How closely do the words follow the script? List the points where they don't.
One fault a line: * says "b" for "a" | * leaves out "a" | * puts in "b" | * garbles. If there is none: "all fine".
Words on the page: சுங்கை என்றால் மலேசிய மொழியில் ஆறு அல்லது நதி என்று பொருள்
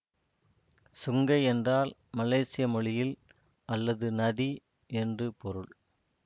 * leaves out "ஆறு"